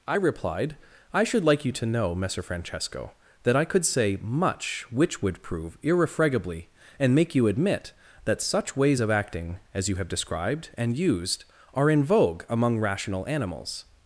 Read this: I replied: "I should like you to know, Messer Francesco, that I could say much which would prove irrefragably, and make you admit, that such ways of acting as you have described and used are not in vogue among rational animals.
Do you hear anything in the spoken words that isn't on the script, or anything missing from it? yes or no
yes